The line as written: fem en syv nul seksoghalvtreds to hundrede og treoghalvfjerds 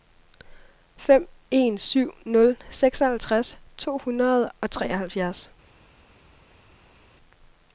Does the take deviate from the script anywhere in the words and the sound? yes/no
no